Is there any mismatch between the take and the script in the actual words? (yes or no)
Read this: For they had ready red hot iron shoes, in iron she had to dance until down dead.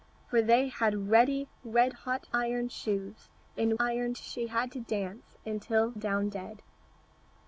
no